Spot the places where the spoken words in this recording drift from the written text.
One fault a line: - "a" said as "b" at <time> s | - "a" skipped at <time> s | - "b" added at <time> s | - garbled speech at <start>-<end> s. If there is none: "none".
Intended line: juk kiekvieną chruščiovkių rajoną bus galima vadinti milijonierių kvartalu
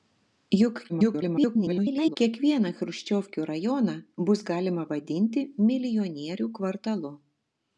- garbled speech at 0.9-2.2 s